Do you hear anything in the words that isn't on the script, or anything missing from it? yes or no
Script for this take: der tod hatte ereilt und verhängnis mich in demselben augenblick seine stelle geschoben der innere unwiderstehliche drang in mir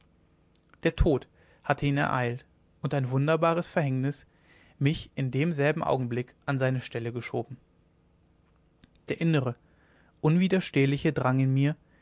yes